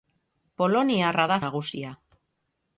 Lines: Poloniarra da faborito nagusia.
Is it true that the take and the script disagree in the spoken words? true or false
true